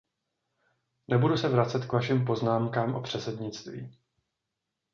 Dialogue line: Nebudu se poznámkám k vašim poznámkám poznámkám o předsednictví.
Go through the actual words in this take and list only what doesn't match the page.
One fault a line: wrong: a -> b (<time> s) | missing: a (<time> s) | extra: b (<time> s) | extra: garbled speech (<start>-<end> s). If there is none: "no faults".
wrong: poznámkám -> vracet (1.5 s)
missing: poznámkám (2.9 s)